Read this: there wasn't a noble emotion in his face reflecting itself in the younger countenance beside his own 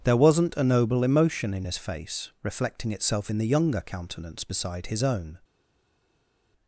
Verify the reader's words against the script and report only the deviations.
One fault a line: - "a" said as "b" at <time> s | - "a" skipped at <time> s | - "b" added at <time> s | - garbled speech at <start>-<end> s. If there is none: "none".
none